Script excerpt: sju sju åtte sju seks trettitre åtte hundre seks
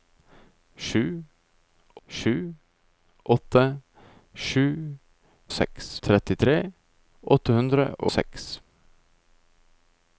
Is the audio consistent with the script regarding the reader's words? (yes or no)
yes